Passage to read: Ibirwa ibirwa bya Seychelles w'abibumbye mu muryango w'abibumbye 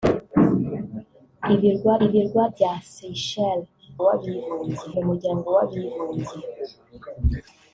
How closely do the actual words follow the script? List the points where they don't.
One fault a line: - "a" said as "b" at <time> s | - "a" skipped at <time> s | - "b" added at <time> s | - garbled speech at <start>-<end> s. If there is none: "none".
none